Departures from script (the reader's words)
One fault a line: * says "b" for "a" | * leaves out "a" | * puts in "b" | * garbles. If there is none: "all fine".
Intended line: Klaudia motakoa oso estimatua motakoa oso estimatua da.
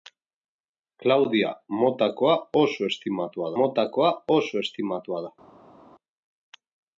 all fine